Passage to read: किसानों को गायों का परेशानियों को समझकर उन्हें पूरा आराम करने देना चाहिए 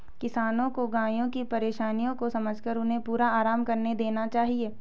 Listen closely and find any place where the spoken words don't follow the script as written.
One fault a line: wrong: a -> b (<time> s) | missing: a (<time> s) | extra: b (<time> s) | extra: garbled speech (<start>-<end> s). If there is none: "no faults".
wrong: का -> की (1.3 s)